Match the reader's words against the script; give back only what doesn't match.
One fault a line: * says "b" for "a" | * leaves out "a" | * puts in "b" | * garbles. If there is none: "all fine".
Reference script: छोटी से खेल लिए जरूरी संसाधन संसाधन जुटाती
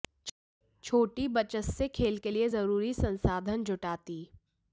* puts in "बचत"
* puts in "के"
* leaves out "संसाधन"